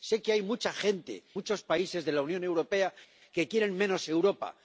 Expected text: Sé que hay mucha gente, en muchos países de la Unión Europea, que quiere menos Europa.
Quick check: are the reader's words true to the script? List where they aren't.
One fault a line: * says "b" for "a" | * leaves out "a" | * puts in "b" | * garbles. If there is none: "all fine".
* leaves out "en"